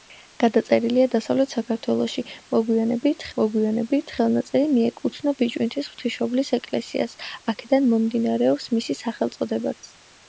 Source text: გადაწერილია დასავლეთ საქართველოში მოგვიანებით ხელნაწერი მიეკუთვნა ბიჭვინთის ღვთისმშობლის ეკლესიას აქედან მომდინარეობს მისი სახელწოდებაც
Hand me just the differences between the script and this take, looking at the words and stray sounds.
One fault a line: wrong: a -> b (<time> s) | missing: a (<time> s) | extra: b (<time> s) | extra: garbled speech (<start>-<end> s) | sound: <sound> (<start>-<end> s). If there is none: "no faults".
extra: მოგვიანებით (3.4 s)